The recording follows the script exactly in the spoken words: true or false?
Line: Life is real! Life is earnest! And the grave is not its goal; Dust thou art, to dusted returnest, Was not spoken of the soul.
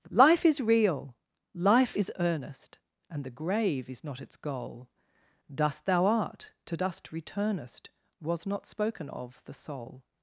false